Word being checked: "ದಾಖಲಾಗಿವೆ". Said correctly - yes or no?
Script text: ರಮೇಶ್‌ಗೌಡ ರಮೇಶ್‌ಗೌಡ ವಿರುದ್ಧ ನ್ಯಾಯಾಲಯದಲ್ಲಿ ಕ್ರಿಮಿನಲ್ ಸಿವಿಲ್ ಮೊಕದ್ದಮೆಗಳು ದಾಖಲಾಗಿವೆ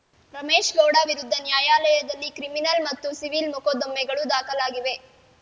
yes